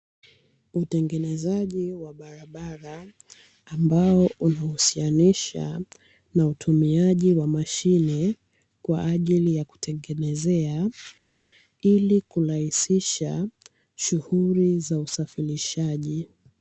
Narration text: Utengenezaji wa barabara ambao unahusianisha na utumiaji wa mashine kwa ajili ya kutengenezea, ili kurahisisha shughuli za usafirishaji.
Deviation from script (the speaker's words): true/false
false